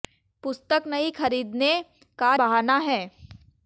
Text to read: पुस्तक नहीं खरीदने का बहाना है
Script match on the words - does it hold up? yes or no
yes